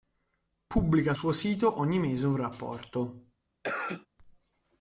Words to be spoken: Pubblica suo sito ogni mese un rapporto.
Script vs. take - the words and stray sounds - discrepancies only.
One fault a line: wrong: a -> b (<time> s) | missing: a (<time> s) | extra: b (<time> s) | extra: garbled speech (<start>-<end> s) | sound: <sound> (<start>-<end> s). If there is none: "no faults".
sound: cough (3.6-4.1 s)